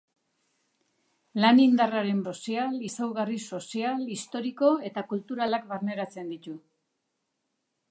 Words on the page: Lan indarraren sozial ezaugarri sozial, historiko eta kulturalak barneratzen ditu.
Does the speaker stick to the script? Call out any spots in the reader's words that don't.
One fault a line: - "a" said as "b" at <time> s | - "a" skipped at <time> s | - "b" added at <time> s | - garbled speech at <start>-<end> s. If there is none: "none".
none